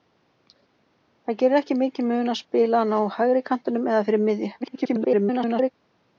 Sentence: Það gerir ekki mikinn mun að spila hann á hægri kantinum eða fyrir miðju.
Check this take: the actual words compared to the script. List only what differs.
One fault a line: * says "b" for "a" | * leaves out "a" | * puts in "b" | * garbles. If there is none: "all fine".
* garbles